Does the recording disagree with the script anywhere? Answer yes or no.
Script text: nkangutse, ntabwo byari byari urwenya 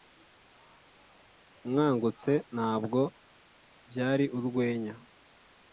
yes